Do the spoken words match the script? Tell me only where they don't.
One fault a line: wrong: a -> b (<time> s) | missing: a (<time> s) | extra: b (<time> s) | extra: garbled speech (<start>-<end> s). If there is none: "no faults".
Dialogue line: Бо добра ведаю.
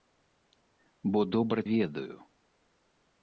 no faults